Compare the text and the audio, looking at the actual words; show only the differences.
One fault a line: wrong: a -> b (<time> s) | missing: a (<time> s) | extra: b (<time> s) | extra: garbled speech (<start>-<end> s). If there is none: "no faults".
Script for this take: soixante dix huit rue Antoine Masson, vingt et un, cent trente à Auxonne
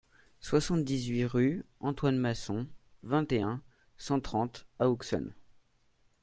no faults